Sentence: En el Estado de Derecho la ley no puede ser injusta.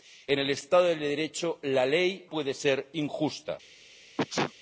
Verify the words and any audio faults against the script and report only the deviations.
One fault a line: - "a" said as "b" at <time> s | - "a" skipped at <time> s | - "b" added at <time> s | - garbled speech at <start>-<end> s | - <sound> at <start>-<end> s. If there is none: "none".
- "no" skipped at 2.3 s
- sneeze at 4.2-4.5 s